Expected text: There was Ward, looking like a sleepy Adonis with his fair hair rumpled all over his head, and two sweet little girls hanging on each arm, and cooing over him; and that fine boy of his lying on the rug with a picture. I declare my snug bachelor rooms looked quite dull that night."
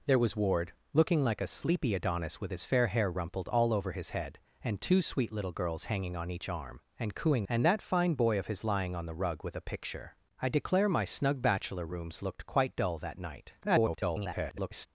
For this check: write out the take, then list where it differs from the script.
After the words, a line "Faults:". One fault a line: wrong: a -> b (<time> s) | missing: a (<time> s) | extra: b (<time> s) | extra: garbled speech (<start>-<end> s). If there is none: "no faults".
There was Ward, looking like a sleepy Adonis with his fair hair rumpled all over his head, and two sweet little girls hanging on each arm, and cooing; and that fine boy of his lying on the rug with a picture. I declare my snug bachelor rooms looked quite dull that night." [garbled]
Faults:
missing: over him (7.5 s)
extra: garbled speech (13.6-14.9 s)